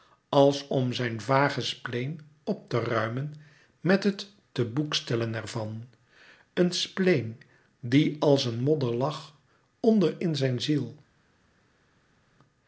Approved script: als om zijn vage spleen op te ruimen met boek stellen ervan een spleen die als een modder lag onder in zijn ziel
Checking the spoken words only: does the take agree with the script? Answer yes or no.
no